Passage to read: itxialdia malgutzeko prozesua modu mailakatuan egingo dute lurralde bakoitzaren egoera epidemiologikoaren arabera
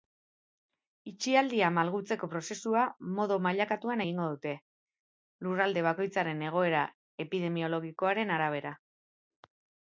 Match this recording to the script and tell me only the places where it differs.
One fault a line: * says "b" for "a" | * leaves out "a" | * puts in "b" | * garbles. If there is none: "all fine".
all fine